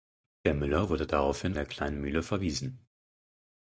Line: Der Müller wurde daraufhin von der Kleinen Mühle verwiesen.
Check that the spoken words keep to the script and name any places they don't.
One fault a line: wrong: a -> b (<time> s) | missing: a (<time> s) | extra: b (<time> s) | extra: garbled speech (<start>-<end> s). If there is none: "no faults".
missing: von (1.6 s)